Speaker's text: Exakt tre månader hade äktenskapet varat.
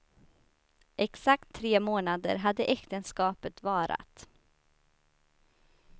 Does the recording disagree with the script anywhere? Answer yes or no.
no